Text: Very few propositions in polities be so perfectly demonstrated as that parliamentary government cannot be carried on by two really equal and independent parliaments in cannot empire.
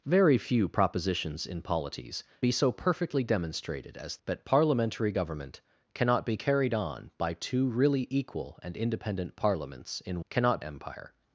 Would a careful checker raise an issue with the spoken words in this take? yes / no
no